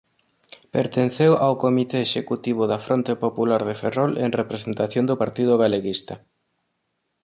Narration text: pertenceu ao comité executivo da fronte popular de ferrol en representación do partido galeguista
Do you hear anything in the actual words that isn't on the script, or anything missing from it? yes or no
no